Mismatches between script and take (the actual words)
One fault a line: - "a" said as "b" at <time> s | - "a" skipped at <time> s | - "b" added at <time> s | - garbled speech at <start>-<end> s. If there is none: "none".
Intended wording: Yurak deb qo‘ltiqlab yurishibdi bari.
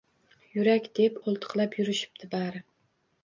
none